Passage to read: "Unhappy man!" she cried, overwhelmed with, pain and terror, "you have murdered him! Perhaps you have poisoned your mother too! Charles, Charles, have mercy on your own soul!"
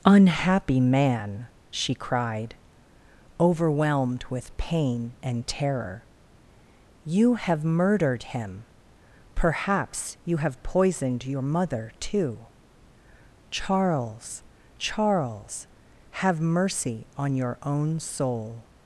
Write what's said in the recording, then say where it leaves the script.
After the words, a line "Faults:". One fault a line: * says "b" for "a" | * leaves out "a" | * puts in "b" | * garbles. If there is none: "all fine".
"Unhappy man!" she cried, overwhelmed with, pain and terror, "you have murdered him! Perhaps you have poisoned your mother too! Charles, Charles, have mercy on your own soul!"
Faults:
all fine